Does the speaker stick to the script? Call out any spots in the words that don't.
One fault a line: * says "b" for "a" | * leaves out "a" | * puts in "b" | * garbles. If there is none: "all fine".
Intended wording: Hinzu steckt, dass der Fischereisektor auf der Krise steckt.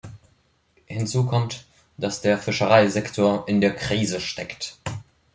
* says "kommt" for "steckt"
* says "in" for "auf"